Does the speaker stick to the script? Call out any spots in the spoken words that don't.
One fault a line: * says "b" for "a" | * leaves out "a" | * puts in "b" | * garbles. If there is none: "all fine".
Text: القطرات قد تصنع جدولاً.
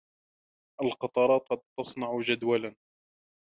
all fine